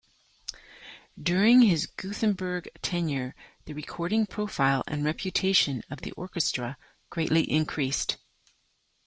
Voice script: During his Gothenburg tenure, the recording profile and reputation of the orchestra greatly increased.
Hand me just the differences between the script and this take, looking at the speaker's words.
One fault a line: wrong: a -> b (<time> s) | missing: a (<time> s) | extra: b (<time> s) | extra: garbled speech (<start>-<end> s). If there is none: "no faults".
no faults